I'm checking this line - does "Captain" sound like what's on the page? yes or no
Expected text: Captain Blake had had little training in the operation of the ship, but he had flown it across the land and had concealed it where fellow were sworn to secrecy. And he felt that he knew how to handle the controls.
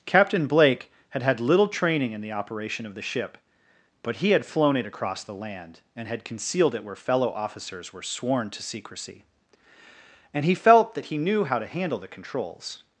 yes